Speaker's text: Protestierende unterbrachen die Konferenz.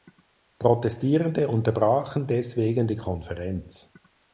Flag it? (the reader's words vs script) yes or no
yes